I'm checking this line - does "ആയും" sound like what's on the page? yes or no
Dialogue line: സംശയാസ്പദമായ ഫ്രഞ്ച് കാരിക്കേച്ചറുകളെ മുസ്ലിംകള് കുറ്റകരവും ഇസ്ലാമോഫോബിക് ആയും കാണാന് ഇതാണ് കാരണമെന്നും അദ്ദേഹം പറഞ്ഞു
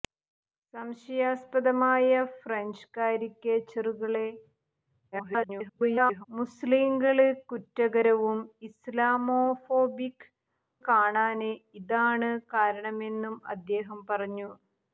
no